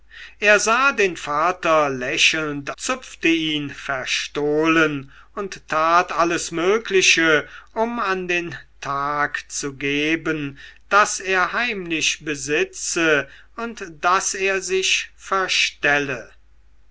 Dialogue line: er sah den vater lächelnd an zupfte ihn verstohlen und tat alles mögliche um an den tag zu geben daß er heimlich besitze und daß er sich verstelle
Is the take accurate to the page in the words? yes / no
no